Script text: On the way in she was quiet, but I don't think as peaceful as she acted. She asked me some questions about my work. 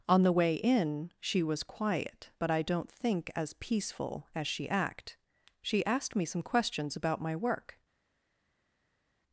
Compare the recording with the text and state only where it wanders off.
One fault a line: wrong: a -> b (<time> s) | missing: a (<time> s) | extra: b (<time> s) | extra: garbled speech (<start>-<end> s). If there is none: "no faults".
wrong: acted -> act (4.7 s)